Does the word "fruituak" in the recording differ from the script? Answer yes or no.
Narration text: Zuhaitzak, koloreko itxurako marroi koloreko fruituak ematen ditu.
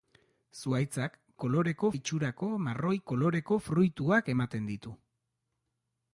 no